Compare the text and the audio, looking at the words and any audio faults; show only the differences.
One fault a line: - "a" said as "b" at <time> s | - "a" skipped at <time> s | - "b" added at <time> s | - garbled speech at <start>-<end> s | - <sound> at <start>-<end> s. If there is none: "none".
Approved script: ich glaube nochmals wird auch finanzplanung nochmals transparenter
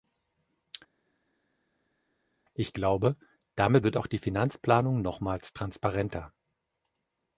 - "nochmals" said as "damit" at 3.5 s
- "die" added at 4.1 s